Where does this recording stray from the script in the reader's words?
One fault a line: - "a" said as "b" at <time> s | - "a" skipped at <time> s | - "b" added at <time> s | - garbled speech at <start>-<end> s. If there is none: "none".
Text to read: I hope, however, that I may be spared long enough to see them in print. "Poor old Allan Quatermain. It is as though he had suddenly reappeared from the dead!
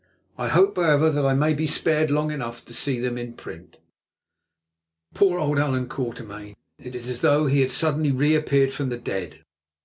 none